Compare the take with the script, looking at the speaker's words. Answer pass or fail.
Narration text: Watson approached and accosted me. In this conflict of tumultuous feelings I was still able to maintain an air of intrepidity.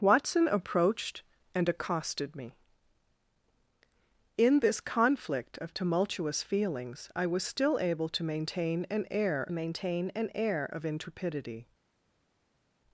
fail